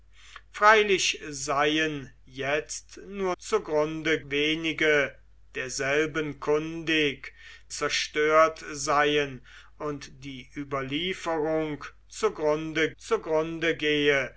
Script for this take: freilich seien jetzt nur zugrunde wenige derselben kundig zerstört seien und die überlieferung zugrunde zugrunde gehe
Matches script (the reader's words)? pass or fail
pass